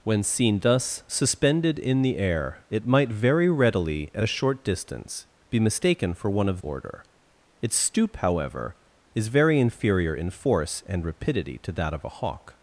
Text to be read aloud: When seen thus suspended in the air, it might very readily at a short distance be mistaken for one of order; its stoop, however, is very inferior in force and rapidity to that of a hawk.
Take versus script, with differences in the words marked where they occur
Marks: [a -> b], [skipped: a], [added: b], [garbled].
When seen thus suspended in the air, it might very readily at a short distance be mistaken for one of order; its stoop, however, is very inferior in force and rapidity to that of a hawk.